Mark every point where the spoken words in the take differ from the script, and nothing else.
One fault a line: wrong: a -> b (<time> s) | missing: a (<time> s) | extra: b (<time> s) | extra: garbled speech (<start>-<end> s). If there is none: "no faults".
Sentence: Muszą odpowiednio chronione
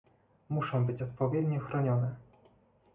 extra: być (0.8 s)